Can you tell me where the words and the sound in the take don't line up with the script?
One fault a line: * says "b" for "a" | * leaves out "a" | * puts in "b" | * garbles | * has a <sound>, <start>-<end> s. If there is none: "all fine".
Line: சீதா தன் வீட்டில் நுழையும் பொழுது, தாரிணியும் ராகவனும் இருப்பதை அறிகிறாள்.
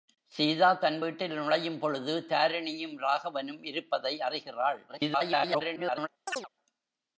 * garbles
* has a chirp, 6.3-6.5 s